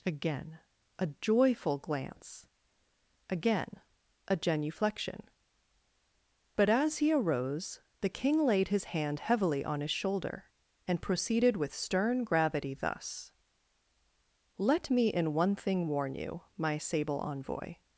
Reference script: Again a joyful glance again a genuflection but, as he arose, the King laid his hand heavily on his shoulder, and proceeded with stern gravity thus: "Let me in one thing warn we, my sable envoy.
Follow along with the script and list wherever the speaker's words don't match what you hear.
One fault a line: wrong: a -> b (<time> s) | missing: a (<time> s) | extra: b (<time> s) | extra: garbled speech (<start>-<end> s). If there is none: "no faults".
wrong: we -> you (16.1 s)